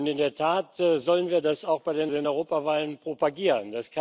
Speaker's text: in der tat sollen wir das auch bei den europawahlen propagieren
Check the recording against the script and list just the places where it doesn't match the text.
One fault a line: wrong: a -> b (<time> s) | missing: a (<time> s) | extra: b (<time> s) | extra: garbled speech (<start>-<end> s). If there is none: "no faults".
extra: den (2.1 s)